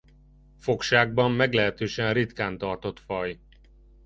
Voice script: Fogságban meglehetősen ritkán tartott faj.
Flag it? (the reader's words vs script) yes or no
no